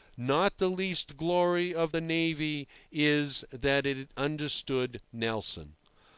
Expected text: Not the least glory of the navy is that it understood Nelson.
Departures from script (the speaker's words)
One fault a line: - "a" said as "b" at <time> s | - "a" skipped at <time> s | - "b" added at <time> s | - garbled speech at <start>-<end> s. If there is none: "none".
none